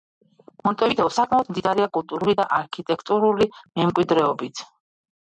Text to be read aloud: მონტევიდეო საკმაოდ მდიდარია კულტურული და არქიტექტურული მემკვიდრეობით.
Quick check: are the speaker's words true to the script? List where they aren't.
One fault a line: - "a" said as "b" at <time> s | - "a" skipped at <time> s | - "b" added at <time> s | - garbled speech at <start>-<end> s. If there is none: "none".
none